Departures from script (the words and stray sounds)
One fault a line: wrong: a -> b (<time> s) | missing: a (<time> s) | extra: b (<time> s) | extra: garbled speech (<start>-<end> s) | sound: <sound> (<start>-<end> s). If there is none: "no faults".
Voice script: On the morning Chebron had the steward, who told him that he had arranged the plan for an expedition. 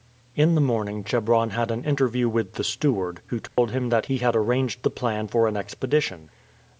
wrong: On -> In (0.3 s)
extra: an interview with (1.7 s)
sound: dropout (3.5-3.6 s)